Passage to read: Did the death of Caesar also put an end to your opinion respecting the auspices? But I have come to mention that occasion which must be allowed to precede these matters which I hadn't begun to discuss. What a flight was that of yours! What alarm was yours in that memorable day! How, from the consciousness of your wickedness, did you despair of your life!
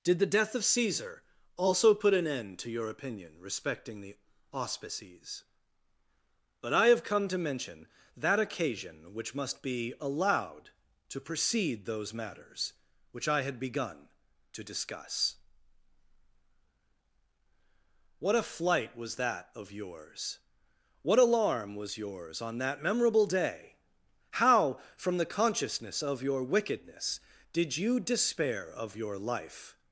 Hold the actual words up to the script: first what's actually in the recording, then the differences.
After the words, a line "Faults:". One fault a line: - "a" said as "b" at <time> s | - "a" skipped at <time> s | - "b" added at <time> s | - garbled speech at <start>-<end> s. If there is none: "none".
Did the death of Caesar also put an end to your opinion respecting the auspices? But I have come to mention that occasion which must be allowed to precede those matters which I had begun to discuss. What a flight was that of yours! What alarm was yours on that memorable day! How, from the consciousness of your wickedness, did you despair of your life!
Faults:
- "these" said as "those" at 11.8 s
- "hadn't" said as "had" at 13.4 s
- "in" said as "on" at 22.4 s